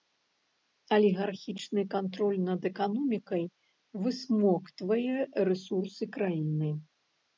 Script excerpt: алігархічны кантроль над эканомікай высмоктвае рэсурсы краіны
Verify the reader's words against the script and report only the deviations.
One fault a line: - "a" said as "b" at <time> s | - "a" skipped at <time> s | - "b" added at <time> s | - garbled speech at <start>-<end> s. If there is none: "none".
none